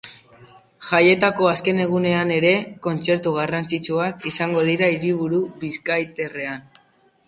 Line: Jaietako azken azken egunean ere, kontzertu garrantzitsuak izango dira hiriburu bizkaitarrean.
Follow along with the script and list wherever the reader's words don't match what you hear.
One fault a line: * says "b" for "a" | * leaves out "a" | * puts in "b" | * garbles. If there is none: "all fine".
* leaves out "azken"